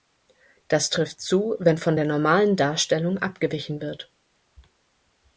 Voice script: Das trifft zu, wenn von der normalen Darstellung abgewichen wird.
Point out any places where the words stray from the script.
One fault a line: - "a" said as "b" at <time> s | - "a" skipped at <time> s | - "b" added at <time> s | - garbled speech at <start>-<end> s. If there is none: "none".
none